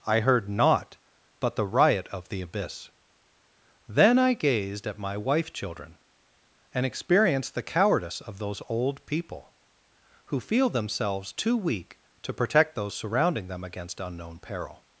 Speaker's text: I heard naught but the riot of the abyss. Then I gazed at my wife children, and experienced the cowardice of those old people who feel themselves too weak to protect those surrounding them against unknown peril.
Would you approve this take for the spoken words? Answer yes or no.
yes